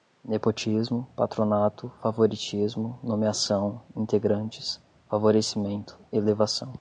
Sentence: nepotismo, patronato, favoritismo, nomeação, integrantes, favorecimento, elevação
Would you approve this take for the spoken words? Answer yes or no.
yes